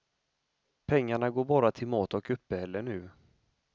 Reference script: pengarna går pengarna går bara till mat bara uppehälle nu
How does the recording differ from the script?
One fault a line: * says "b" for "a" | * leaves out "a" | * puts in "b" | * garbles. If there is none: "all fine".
* leaves out "pengarna går"
* says "och" for "bara"